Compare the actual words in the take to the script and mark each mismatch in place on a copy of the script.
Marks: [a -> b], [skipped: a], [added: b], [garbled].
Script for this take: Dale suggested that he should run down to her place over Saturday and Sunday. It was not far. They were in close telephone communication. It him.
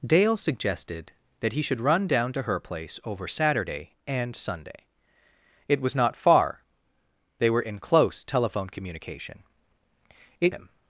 Dale suggested that he should run down to her place over Saturday and Sunday. It was not far. They were in close telephone communication. It him.